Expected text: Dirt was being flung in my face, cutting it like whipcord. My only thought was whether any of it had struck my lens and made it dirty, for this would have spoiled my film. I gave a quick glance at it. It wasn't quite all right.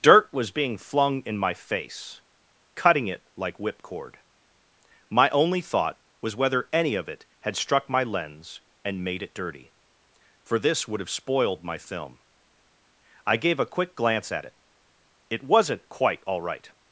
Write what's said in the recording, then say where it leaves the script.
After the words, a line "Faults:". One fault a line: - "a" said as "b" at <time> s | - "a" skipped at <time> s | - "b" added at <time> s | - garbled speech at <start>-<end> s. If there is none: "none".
Dirt was being flung in my face, cutting it like whipcord. My only thought was whether any of it had struck my lens and made it dirty, for this would have spoiled my film. I gave a quick glance at it. It wasn't quite all right.
Faults:
none